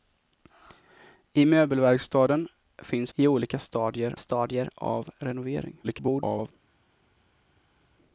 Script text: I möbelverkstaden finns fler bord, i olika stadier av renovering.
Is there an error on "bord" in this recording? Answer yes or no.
yes